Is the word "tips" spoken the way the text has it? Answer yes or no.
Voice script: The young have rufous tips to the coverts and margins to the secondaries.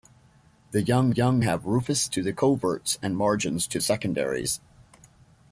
no